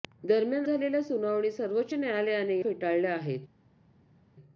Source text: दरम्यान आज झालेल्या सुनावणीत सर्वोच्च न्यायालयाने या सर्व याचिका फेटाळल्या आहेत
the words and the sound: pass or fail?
fail